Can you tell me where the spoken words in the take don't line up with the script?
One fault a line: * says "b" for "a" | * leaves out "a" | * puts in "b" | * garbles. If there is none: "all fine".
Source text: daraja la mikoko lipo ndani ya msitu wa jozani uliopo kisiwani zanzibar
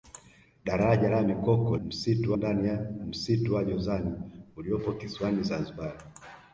* says "msitu" for "lipo"